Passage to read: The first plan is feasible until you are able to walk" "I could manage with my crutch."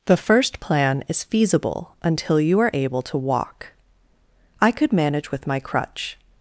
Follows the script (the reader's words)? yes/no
yes